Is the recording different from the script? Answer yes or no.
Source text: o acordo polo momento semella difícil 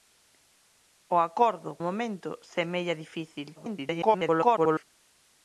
yes